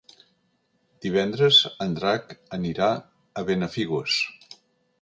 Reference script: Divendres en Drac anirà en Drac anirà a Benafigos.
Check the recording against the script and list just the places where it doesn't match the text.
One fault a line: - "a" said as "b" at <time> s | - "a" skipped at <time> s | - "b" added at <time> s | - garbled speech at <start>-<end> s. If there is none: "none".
- "en Drac anirà" skipped at 2.9 s